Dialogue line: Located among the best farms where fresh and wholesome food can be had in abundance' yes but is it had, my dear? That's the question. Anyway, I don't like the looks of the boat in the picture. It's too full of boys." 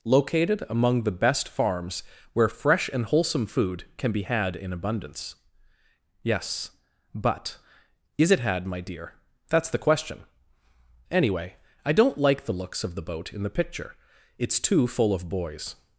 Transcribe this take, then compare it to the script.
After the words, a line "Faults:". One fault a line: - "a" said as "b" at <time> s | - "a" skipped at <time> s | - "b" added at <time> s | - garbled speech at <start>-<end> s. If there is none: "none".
Located among the best farms where fresh and wholesome food can be had in abundance' yes but is it had, my dear? That's the question. Anyway, I don't like the looks of the boat in the picture. It's too full of boys."
Faults:
none